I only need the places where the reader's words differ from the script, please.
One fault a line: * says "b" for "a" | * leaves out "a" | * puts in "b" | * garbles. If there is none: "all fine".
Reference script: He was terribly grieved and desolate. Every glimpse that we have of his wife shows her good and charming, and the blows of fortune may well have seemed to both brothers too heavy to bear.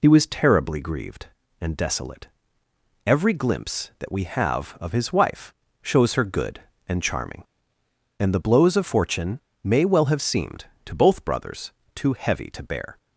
all fine